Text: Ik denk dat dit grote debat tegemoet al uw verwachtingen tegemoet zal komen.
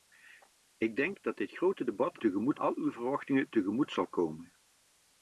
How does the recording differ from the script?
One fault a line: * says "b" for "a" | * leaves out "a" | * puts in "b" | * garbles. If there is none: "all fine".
all fine